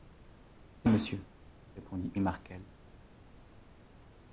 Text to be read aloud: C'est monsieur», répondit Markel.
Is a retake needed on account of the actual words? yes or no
no